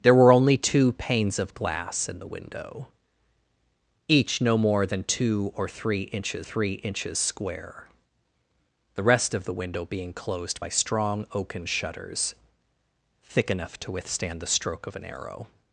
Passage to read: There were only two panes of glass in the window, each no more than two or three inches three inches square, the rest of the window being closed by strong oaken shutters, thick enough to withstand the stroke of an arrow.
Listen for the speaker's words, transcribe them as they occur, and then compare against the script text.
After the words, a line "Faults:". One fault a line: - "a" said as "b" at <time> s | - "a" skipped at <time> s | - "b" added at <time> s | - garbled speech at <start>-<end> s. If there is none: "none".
There were only two panes of glass in the window, each no more than two or three inches three inches square, the rest of the window being closed by strong oaken shutters, thick enough to withstand the stroke of an arrow.
Faults:
none